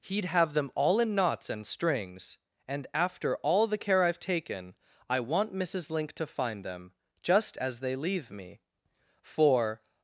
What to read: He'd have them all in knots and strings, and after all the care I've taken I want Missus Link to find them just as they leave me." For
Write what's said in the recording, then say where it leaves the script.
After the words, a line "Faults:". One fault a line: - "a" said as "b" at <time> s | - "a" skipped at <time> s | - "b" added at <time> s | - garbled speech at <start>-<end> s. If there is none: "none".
He'd have them all in knots and strings, and after all the care I've taken I want Missus Link to find them just as they leave me." For
Faults:
none